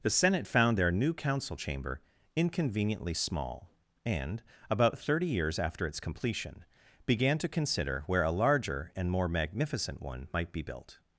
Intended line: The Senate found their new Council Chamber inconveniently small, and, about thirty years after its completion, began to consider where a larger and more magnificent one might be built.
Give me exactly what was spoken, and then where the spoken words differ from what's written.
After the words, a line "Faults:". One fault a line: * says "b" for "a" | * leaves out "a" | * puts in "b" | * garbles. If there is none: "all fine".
The Senate found their new Council Chamber inconveniently small, and, about thirty years after its completion, began to consider where a larger and more magnificent one might be built.
Faults:
all fine